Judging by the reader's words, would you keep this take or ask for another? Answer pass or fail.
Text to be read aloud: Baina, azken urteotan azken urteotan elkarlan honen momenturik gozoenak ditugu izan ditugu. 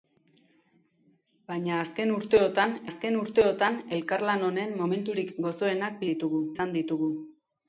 pass